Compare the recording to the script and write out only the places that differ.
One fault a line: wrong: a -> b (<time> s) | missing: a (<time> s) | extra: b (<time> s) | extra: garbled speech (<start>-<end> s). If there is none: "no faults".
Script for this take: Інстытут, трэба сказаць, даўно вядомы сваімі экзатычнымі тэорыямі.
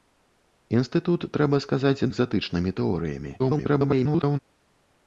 missing: даўно вядомы сваімі (2.1 s)
extra: garbled speech (3.4-4.4 s)